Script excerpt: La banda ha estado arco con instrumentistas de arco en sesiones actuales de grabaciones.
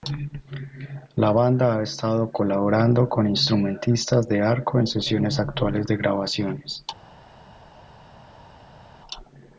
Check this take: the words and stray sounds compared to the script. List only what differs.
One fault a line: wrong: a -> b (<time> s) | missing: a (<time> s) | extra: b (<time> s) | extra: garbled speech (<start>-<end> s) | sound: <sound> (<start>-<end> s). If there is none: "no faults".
wrong: arco -> colaborando (2.3 s)